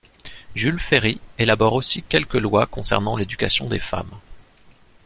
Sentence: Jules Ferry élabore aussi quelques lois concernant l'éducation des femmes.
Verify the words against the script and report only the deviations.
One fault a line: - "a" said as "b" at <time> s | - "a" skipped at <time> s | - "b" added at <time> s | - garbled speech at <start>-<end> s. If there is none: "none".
none